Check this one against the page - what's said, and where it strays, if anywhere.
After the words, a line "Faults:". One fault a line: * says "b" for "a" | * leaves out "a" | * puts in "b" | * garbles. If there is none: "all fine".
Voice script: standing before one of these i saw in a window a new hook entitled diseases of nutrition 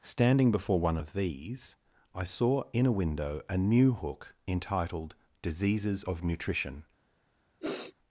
standing before one of these i saw in a window a new hook entitled diseases of nutrition
Faults:
all fine